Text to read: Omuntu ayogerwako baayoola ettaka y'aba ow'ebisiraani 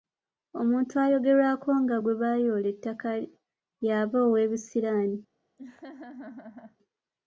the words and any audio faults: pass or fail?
fail